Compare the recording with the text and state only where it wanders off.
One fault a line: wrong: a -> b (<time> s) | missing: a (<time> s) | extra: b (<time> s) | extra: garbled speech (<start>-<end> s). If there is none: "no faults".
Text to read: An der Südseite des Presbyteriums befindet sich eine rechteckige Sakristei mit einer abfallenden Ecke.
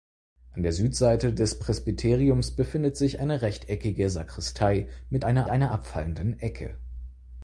extra: einer (5.5 s)